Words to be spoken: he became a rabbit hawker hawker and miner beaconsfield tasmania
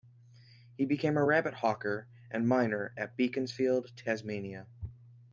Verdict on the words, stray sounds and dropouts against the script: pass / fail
fail